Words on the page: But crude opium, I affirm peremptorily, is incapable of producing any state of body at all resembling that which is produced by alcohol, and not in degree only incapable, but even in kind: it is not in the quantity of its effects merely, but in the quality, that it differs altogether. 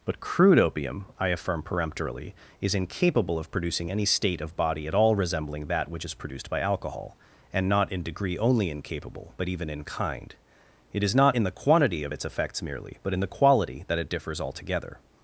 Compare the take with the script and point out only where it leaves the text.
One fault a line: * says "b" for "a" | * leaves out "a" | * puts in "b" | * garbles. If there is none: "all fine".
all fine